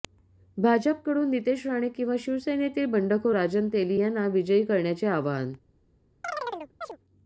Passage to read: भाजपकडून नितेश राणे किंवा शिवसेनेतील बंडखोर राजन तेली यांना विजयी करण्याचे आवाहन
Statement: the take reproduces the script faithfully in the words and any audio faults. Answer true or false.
false